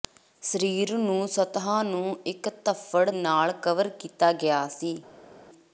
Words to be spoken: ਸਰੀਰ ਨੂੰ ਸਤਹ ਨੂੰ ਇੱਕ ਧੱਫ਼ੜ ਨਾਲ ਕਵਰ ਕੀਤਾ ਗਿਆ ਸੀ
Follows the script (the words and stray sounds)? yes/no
yes